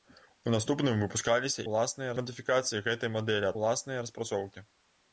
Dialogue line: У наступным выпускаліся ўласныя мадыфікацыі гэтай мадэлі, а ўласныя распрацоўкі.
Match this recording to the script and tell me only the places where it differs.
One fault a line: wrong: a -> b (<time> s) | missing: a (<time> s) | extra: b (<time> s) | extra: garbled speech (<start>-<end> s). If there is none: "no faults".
no faults